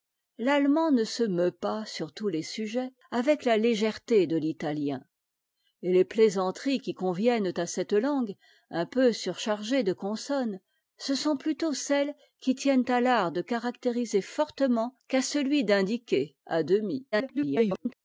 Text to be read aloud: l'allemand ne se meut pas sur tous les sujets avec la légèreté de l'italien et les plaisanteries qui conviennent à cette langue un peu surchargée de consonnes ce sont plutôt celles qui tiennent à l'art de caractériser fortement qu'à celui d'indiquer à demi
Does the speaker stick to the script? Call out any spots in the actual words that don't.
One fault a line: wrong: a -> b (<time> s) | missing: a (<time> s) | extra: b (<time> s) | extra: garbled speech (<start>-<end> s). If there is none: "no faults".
extra: garbled speech (17.1-17.9 s)